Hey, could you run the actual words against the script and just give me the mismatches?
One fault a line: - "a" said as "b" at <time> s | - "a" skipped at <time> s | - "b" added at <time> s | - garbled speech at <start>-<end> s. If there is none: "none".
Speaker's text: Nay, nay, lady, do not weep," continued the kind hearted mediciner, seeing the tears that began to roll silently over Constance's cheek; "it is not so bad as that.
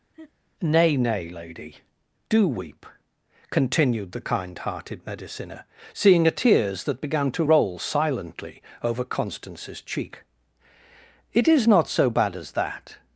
- "not" skipped at 2.5 s
- "the" said as "a" at 6.3 s